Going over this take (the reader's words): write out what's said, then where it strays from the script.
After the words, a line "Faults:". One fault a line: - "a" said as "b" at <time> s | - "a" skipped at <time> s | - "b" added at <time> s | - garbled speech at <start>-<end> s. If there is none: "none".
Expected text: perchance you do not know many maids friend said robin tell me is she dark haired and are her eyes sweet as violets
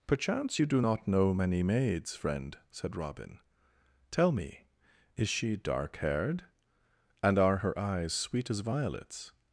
perchance you do not know many maids friend said robin tell me is she dark haired and are her eyes sweet as violets
Faults:
none